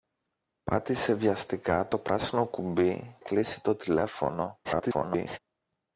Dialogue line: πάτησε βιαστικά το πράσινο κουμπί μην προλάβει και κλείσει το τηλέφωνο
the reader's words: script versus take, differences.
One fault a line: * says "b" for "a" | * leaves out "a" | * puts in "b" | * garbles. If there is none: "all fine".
* leaves out "μην προλάβει και"
* garbles